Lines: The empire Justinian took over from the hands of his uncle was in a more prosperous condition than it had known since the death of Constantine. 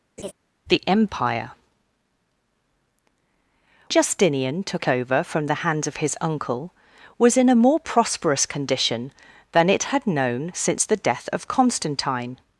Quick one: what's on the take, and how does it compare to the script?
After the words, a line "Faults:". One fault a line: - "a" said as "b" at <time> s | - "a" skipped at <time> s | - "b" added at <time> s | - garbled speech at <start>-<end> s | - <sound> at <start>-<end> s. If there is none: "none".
The empire Justinian took over from the hands of his uncle was in a more prosperous condition than it had known since the death of Constantine.
Faults:
- laugh at 0.2-0.3 s